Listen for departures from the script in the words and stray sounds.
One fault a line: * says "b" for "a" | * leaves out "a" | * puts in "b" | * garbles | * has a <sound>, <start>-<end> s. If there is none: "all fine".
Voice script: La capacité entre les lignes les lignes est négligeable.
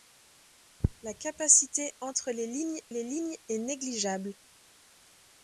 all fine